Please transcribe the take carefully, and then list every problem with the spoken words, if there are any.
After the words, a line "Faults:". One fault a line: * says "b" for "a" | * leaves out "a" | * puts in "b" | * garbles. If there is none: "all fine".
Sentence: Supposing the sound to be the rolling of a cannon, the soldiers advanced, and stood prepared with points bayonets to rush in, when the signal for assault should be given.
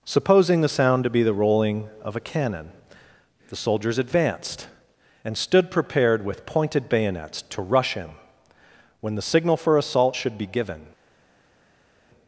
Supposing the sound to be the rolling of a cannon, the soldiers advanced, and stood prepared with pointed bayonets to rush in, when the signal for assault should be given.
Faults:
* says "pointed" for "points"